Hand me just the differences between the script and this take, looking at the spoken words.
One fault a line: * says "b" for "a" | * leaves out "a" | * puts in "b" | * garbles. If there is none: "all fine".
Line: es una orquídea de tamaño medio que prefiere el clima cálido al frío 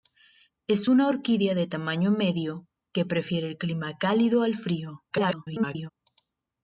* garbles